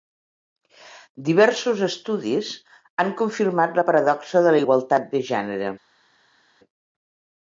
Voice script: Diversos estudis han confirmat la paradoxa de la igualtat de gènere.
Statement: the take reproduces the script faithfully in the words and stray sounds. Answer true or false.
true